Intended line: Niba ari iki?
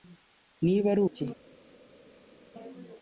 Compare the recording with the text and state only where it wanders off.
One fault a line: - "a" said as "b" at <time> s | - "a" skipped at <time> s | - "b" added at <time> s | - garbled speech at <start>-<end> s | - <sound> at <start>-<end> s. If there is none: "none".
none